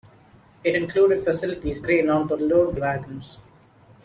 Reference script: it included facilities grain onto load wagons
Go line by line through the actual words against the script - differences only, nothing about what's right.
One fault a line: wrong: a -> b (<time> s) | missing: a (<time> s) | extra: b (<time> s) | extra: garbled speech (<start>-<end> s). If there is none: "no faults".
no faults